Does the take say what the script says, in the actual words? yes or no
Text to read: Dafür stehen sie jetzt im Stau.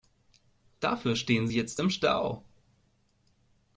yes